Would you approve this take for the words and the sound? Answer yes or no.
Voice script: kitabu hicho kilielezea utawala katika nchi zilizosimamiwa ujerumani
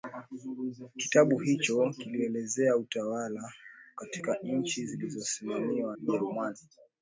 yes